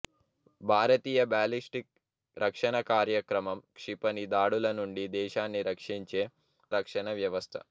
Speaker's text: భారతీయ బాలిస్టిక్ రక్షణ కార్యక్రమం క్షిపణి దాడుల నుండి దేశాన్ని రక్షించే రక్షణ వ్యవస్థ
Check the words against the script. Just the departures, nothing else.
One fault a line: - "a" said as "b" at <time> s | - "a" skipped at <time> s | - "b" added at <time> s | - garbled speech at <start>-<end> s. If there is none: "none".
none